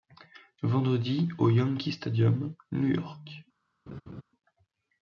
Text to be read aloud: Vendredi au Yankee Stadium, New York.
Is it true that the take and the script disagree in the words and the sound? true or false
true